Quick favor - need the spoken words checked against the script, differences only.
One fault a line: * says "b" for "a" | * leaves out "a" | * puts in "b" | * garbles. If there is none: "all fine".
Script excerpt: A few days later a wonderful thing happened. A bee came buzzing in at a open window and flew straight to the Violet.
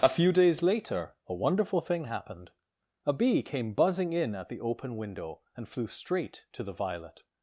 * says "the" for "a"